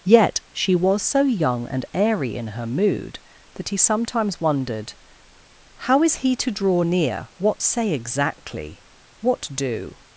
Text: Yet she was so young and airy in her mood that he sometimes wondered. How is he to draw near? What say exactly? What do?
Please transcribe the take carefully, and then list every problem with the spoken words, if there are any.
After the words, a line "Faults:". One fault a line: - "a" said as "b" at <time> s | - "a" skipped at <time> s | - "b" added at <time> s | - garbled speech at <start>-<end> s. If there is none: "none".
Yet she was so young and airy in her mood that he sometimes wondered. How is he to draw near? What say exactly? What do?
Faults:
none